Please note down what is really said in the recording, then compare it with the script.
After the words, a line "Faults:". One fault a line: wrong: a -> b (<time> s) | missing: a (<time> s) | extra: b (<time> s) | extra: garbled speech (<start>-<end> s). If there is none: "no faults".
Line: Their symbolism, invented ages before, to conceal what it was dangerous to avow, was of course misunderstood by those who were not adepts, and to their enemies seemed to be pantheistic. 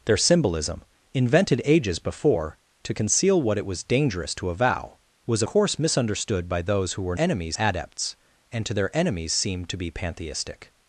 Their symbolism, invented ages before, to conceal what it was dangerous to avow, was course misunderstood by those who were enemies adepts, and to their enemies seemed to be pantheistic.
Faults:
missing: of (5.4 s)
wrong: not -> enemies (7.2 s)